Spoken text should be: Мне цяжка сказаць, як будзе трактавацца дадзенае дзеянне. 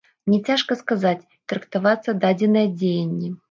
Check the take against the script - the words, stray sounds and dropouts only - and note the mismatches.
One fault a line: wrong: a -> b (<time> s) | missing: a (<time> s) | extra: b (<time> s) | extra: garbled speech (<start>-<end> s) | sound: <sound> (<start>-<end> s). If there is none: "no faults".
missing: як будзе (1.3 s)